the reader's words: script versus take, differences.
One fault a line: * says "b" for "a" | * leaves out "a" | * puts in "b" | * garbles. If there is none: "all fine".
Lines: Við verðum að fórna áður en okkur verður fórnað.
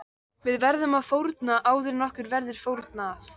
all fine